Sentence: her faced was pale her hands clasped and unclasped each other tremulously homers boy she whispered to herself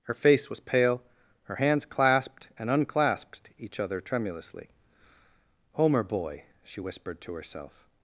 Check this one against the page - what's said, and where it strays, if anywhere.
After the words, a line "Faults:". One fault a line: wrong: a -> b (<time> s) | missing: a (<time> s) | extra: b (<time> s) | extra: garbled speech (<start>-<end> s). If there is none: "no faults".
her face was pale her hands clasped and unclasped each other tremulously homer boy she whispered to herself
Faults:
wrong: faced -> face (0.1 s)
wrong: homers -> homer (5.7 s)